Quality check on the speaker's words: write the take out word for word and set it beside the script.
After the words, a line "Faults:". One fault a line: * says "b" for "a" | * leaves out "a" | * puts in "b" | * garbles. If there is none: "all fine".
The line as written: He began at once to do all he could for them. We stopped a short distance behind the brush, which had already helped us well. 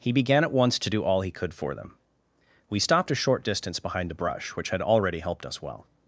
He began at once to do all he could for them. We stopped a short distance behind the brush, which had already helped us well.
Faults:
all fine